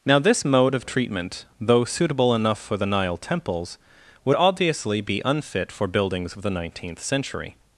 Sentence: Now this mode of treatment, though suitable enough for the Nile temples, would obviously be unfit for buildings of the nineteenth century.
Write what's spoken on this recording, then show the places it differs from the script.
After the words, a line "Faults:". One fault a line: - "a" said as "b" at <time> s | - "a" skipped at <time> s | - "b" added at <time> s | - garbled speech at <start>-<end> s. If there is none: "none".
Now this mode of treatment, though suitable enough for the Nile temples, would obviously be unfit for buildings of the nineteenth century.
Faults:
none